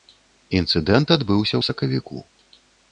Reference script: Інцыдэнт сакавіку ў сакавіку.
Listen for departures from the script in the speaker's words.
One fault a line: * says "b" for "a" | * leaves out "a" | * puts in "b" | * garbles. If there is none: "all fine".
* says "адбыўся" for "сакавіку"